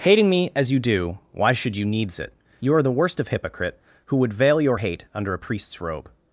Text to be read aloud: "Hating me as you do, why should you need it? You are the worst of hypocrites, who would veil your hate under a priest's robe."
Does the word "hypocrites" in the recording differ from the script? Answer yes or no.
yes